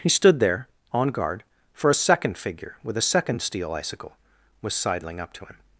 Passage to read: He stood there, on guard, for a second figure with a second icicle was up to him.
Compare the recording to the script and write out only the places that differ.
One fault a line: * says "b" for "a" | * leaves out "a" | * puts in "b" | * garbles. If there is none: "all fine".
* puts in "steel"
* puts in "sidling"